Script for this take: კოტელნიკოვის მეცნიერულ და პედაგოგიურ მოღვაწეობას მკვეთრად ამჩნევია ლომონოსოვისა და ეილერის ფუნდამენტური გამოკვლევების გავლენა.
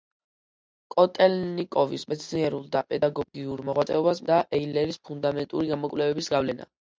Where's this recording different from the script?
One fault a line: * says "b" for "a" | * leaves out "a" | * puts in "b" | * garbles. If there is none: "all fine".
* leaves out "მკვეთრად ამჩნევია ლომონოსოვისა"